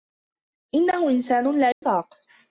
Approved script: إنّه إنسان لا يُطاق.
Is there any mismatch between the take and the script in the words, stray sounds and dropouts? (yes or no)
yes